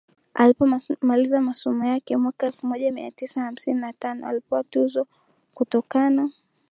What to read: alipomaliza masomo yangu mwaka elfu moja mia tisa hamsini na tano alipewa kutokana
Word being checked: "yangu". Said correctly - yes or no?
no